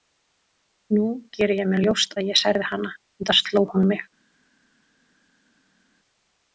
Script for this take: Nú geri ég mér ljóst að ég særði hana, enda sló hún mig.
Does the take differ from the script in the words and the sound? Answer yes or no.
no